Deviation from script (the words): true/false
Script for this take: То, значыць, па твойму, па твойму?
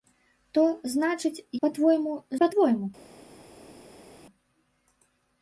false